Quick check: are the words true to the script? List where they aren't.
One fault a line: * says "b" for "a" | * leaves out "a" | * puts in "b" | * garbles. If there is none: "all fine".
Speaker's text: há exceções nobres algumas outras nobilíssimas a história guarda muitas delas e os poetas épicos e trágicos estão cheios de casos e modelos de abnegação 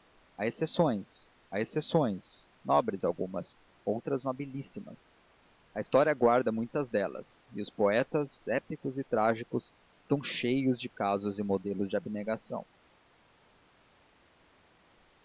* puts in "há exceções"